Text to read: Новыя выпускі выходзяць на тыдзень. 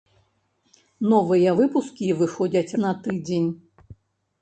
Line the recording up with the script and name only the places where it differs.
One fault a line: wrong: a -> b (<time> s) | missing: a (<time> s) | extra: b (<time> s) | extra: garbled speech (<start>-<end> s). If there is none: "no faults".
no faults